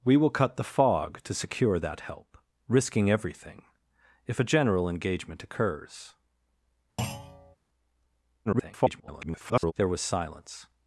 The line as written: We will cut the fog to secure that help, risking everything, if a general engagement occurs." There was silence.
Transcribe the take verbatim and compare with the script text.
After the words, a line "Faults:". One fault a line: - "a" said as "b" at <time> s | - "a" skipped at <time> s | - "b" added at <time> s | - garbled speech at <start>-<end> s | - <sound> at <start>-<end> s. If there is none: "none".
We will cut the fog to secure that help, risking everything, if a general engagement occurs." [garbled] There was silence.
Faults:
- thud at 7.0-7.6 s
- garbled speech at 8.5-9.7 s